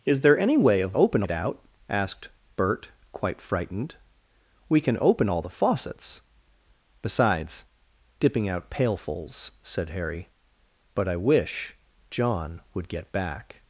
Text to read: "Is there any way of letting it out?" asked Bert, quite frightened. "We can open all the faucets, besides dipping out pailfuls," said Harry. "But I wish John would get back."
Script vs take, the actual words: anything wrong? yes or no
yes